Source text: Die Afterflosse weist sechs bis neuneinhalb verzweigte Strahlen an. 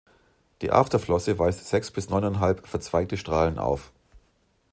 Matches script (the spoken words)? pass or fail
fail